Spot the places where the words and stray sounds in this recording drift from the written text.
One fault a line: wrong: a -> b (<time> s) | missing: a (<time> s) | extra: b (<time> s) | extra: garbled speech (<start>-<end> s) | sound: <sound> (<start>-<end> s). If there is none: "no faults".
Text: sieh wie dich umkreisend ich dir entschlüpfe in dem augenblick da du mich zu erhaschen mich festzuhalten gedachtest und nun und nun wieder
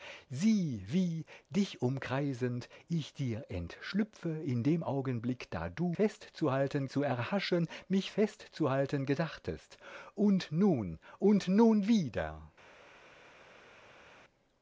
wrong: mich -> festzuhalten (5.9 s)